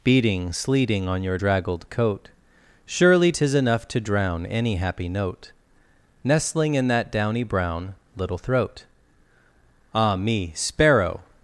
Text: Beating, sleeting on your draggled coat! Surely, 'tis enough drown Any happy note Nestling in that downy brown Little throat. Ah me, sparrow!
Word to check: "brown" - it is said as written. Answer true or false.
true